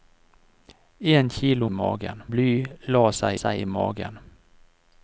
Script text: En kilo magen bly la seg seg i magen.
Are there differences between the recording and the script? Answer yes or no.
no